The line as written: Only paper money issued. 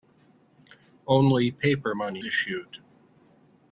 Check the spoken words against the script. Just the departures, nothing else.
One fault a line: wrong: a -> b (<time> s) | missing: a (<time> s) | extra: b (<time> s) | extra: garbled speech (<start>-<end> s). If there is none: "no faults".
no faults